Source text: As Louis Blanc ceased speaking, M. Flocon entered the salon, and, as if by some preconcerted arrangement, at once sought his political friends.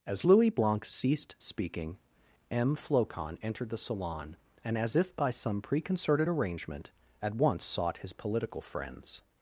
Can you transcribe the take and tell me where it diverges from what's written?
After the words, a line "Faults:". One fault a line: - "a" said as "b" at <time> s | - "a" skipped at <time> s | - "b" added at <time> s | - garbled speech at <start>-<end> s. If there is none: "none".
As Louis Blanc ceased speaking, M. Flocon entered the salon, and, as if by some preconcerted arrangement, at once sought his political friends.
Faults:
none